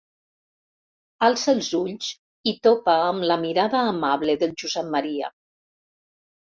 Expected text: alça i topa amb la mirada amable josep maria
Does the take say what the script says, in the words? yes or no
no